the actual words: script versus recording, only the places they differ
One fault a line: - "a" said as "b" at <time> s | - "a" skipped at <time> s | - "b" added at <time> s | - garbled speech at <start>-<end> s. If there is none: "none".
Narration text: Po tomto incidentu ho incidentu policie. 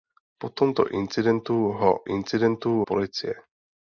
none